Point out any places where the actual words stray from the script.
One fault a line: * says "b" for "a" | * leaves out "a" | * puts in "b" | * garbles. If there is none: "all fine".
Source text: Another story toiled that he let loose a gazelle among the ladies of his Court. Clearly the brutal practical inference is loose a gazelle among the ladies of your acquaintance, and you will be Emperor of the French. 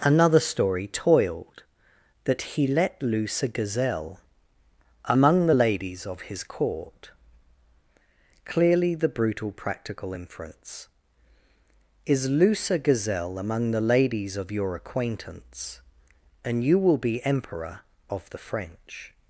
all fine